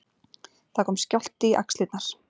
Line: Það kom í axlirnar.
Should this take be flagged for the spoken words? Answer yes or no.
yes